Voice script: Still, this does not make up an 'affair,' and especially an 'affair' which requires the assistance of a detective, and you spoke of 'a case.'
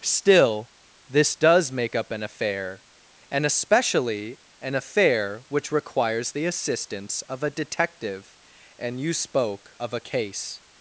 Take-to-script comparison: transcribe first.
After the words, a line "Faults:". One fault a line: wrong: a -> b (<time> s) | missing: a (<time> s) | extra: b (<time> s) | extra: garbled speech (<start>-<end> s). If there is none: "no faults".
Still, this does make up an 'affair,' and especially an 'affair' which requires the assistance of a detective, and you spoke of 'a case.'
Faults:
missing: not (1.7 s)